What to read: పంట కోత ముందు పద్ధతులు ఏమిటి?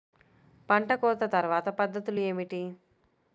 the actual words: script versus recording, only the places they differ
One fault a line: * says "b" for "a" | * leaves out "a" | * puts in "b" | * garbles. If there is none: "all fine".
* says "తర్వాత" for "ముందు"